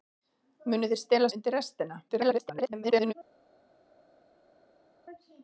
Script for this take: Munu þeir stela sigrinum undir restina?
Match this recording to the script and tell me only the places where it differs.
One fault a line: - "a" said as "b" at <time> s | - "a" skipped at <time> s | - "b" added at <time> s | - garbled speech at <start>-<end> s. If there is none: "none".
- "sigrinum" skipped at 1.3 s
- garbled speech at 2.1-3.1 s